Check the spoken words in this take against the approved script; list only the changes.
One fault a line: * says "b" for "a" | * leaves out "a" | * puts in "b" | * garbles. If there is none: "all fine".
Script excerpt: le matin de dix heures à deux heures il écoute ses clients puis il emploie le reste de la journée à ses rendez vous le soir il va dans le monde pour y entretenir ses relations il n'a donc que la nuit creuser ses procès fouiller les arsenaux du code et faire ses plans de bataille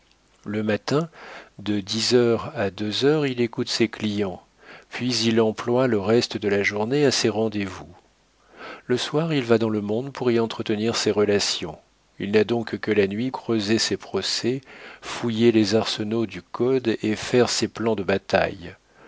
all fine